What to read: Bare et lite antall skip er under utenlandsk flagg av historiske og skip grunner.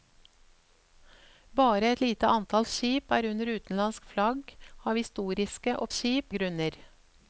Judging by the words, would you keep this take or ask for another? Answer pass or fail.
pass